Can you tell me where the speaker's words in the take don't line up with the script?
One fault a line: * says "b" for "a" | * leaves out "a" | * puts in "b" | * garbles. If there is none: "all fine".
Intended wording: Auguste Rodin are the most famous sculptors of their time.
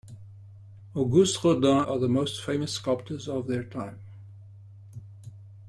all fine